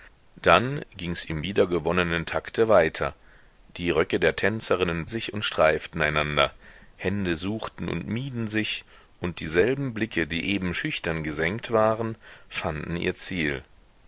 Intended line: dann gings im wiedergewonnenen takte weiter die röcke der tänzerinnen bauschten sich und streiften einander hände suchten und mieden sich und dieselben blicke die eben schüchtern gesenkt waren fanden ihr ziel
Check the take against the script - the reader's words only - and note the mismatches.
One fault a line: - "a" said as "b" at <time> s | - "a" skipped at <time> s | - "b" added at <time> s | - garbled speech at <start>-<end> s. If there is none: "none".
- "bauschten" skipped at 5.1 s